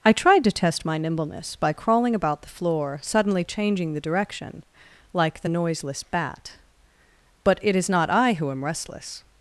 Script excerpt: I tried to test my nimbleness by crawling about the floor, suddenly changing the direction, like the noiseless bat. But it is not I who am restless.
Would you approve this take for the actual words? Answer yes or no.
yes